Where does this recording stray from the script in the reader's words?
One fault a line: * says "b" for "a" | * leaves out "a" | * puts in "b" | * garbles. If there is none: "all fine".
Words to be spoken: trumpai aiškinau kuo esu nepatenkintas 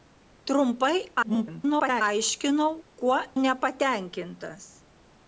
* garbles
* leaves out "esu"